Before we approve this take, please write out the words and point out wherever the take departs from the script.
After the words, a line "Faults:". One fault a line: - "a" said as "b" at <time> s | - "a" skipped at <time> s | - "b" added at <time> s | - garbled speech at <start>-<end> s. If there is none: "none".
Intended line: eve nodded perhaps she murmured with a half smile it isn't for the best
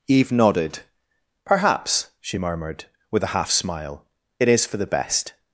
eve nodded perhaps she murmured with a half smile it is for the best
Faults:
- "isn't" said as "is" at 4.5 s